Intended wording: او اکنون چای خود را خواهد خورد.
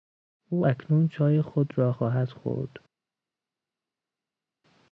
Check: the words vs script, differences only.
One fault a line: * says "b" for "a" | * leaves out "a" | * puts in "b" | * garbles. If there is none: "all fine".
all fine